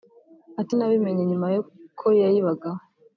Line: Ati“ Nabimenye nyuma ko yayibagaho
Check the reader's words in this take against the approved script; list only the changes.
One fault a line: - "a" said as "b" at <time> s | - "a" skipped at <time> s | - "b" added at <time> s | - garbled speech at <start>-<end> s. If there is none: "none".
none